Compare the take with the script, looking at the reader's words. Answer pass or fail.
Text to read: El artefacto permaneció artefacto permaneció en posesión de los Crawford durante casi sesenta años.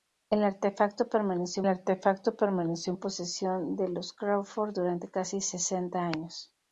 pass